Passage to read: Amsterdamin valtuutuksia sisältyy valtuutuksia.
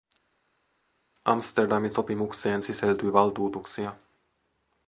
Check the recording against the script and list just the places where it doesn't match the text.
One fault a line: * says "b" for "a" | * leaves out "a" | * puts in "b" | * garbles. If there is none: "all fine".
* says "sopimukseen" for "valtuutuksia"